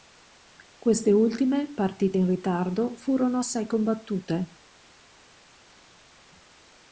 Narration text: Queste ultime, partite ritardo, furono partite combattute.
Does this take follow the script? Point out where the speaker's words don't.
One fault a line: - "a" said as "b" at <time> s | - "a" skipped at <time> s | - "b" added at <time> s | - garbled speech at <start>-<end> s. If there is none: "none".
- "in" added at 2.1 s
- "partite" said as "assai" at 3.4 s